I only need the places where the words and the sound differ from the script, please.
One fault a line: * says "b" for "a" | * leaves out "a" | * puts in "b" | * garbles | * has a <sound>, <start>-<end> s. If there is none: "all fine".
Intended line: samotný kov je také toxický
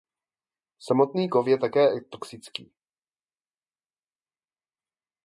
all fine